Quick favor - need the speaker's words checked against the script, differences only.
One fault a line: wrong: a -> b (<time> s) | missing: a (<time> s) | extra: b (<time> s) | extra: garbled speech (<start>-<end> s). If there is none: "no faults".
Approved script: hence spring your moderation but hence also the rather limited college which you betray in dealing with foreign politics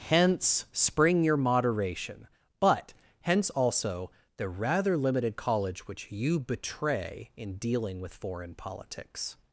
no faults